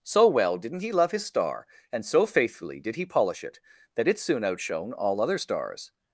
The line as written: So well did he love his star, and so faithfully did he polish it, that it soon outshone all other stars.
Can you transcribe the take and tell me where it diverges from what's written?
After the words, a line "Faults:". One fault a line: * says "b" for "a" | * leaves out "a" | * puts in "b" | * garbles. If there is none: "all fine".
So well didn't he love his star, and so faithfully did he polish it, that it soon outshone all other stars.
Faults:
* says "didn't" for "did"